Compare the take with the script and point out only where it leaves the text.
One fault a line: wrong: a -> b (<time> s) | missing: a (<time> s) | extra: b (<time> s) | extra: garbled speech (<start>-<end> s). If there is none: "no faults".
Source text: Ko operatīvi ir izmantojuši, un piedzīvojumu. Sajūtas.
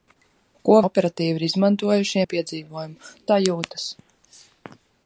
no faults